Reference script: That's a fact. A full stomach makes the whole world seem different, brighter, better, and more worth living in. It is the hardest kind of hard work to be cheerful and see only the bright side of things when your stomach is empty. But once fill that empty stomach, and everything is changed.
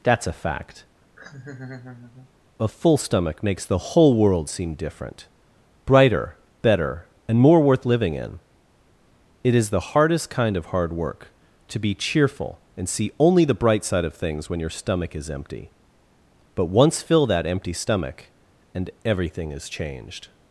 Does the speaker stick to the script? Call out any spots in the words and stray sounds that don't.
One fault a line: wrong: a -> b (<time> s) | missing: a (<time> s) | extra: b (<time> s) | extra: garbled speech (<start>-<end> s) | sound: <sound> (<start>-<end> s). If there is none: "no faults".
sound: laugh (1.2-2.3 s)